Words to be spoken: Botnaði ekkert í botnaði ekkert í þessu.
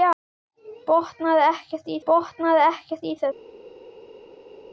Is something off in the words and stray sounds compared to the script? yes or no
no